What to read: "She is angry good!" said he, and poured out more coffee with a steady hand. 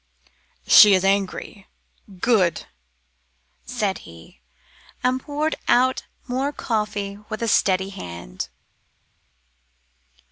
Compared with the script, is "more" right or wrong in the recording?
right